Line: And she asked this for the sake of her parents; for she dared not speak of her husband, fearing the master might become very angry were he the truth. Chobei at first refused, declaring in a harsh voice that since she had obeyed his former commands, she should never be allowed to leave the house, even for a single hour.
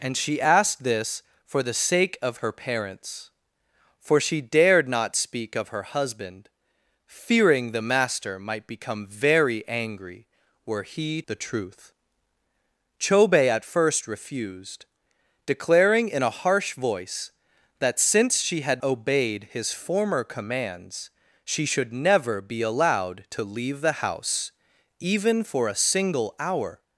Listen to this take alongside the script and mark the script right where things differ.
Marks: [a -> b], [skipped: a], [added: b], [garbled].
And she asked this for the sake of her parents; for she dared not speak of her husband, fearing the master might become very angry were he the truth. Chobei at first refused, declaring in a harsh voice that since she had obeyed his former commands, she should never be allowed to leave the house, even for a single hour.